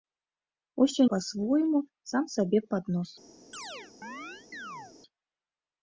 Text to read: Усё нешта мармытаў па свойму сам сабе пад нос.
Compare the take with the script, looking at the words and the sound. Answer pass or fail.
fail